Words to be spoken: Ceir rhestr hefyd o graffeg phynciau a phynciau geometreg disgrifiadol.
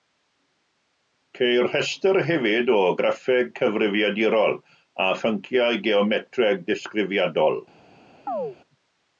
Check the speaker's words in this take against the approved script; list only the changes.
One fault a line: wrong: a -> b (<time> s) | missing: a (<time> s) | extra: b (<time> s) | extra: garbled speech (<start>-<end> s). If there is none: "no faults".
wrong: phynciau -> cyfrifiadurol (3.6 s)